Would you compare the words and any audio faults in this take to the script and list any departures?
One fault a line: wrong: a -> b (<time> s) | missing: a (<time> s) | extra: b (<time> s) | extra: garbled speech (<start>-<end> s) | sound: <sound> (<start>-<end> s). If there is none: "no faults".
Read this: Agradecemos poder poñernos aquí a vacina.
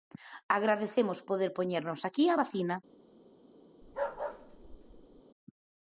sound: bark (3.8-5.2 s)